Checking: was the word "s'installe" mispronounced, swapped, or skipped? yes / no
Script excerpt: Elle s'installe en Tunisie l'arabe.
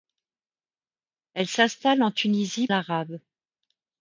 no